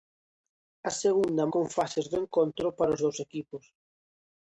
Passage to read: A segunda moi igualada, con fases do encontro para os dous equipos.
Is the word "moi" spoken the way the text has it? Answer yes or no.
no